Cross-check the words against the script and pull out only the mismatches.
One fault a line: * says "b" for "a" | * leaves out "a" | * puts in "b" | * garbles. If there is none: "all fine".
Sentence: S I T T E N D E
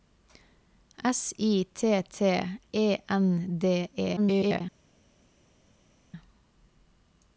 * garbles